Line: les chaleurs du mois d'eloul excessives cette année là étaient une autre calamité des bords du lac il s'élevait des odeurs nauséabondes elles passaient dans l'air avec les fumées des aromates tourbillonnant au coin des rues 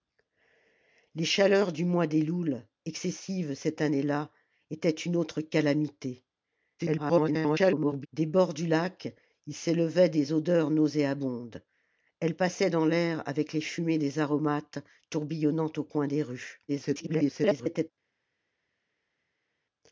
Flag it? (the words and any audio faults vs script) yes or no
yes